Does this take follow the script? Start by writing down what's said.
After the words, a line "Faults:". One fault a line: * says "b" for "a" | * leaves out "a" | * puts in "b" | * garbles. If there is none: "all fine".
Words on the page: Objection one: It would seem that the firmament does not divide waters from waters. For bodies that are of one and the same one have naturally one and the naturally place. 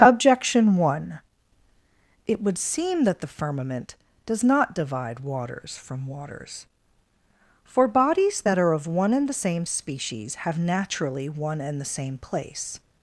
Objection one: It would seem that the firmament does not divide waters from waters. For bodies that are of one and the same species have naturally one and the same place.
Faults:
* says "species" for "one"
* says "same" for "naturally"